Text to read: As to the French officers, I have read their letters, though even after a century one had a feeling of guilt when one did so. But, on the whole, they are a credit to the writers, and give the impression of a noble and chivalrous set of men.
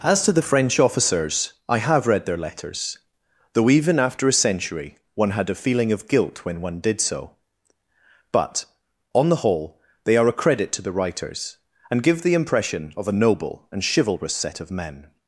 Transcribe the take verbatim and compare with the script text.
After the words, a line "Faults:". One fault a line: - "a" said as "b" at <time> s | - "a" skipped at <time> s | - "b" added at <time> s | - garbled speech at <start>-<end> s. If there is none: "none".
As to the French officers, I have read their letters, though even after a century one had a feeling of guilt when one did so. But, on the whole, they are a credit to the writers, and give the impression of a noble and chivalrous set of men.
Faults:
none